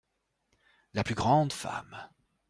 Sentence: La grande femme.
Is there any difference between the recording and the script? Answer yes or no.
yes